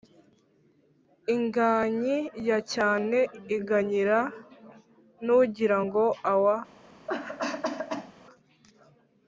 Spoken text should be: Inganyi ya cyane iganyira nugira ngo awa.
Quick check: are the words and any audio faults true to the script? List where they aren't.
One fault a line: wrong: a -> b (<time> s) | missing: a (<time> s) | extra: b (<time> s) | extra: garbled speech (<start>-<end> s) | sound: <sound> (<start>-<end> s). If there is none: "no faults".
sound: cough (7.1-8.1 s)